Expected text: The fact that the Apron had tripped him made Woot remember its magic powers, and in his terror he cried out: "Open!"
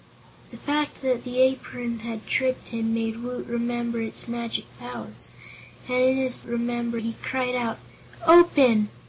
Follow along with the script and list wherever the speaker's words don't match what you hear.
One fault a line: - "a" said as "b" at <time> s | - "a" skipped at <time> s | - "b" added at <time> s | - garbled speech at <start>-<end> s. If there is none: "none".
- "terror" said as "remember" at 6.4 s